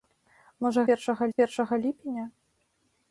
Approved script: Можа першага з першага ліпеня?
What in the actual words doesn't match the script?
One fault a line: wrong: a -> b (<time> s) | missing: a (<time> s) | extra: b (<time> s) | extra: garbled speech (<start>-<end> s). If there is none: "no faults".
no faults